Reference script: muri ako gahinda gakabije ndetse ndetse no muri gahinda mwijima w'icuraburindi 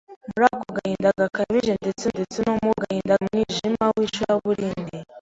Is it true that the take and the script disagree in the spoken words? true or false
false